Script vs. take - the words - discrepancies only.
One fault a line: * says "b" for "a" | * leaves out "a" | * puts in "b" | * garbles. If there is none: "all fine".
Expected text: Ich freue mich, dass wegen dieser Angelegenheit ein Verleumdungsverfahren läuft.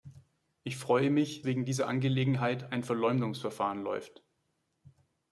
* leaves out "dass"